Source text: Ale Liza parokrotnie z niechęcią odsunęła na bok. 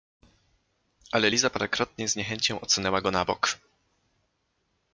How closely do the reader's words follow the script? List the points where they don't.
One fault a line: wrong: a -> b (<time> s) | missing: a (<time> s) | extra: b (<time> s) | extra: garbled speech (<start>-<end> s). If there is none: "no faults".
extra: go (3.0 s)